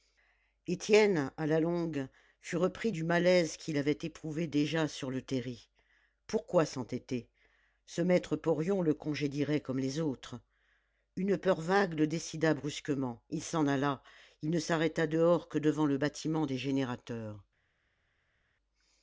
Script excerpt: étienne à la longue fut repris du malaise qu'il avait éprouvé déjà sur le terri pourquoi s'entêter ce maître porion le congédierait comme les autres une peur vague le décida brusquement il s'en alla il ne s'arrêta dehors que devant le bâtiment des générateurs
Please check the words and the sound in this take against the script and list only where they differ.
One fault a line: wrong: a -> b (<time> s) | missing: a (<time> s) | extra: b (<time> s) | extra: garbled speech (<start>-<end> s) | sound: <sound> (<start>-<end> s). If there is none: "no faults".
no faults